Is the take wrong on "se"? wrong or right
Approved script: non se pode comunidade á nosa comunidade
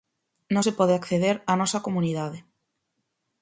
right